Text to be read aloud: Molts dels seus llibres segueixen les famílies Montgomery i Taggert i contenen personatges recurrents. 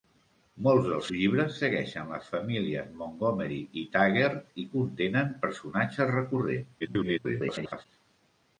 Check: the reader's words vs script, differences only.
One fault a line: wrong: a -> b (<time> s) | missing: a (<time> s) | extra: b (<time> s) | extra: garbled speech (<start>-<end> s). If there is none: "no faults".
missing: seus (1.1 s)
extra: garbled speech (6.8-7.9 s)